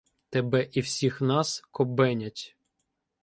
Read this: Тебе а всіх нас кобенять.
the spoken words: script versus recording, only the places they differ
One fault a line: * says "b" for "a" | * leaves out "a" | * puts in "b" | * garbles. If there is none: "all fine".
* says "і" for "а"